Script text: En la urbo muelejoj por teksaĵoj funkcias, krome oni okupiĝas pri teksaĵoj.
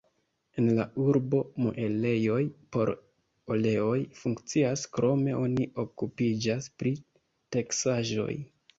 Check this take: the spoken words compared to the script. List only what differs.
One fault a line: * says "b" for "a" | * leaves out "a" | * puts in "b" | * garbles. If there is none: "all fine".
* says "oleoj" for "teksaĵoj"